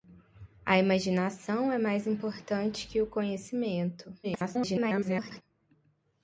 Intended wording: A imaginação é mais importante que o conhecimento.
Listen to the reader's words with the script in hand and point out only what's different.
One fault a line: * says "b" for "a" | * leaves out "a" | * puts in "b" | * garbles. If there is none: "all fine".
* garbles